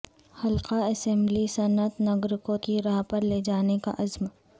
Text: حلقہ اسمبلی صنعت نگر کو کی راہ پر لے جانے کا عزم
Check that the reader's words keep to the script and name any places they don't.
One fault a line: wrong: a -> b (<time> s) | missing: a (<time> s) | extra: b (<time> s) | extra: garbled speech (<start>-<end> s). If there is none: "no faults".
no faults